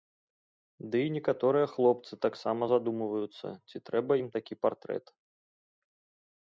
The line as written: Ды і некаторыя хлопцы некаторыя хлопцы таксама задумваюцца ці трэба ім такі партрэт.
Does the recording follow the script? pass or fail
fail